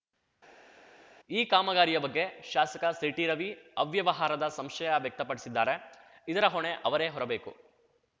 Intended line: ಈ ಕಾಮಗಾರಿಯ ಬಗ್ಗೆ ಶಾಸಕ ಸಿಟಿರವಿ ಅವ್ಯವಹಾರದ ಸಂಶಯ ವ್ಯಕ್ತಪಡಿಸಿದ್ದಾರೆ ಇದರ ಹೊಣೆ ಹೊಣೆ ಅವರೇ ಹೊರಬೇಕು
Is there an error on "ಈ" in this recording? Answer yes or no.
no